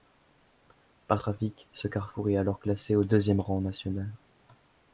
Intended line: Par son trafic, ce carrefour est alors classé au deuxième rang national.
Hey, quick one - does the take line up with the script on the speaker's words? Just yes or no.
no